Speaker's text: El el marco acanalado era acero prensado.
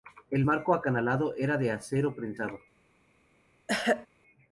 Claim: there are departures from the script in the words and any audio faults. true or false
true